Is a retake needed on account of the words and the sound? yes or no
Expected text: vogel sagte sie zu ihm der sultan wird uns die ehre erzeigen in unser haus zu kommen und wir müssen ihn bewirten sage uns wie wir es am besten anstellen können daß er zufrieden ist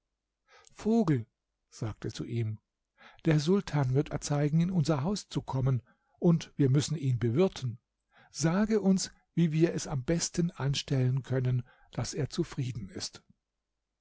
yes